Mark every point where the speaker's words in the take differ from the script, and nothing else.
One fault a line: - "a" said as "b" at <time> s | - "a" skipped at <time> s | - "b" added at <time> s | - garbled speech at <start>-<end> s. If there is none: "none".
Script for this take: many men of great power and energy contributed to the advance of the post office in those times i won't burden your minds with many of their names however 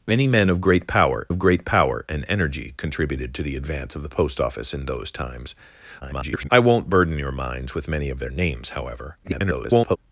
- "of great power" added at 1.3 s
- garbled speech at 6.0-6.5 s
- garbled speech at 9.2-10.0 s